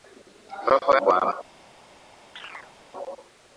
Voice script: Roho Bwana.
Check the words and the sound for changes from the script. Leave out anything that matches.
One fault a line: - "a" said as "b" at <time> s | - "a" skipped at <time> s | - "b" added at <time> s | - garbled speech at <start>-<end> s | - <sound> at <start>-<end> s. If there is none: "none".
- chirp at 2.4-2.7 s